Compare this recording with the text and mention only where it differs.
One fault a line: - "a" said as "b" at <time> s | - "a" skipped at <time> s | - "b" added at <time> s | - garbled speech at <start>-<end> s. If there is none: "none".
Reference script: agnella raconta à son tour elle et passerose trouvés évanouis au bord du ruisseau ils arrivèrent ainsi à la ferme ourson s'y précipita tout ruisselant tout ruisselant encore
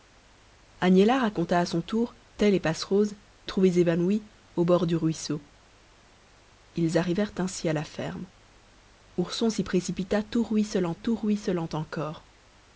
none